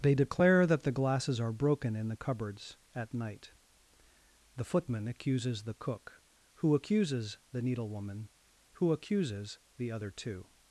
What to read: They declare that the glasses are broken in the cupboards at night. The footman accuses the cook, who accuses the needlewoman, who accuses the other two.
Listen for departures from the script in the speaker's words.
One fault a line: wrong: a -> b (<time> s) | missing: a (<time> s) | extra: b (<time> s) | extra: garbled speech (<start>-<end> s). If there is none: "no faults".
no faults